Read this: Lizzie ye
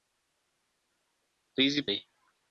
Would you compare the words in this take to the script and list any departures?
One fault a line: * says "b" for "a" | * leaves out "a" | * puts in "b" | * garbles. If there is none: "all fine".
all fine